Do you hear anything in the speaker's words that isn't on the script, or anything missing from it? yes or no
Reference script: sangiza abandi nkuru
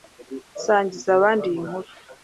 yes